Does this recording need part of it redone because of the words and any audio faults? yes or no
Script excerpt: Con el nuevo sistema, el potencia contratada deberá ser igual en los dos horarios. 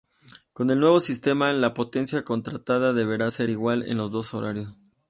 yes